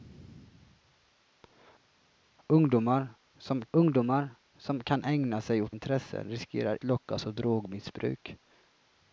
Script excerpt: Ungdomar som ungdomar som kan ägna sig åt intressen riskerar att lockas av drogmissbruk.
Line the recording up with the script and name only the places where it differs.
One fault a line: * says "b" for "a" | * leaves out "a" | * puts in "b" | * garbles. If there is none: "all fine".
all fine